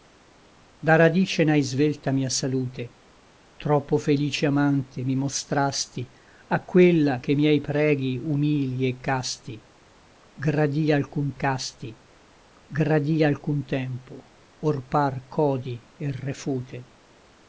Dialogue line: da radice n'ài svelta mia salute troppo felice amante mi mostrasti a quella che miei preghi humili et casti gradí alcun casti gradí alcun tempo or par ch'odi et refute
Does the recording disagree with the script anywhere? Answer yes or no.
no